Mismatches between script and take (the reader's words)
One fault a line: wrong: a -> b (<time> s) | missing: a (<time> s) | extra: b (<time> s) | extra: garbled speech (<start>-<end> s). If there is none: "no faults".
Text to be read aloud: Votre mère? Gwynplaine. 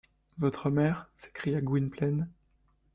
extra: s'écria (1.2 s)